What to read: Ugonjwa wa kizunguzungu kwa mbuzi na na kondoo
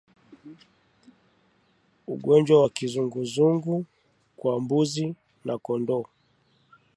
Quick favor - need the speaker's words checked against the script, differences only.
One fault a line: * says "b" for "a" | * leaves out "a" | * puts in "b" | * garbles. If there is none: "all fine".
* leaves out "na"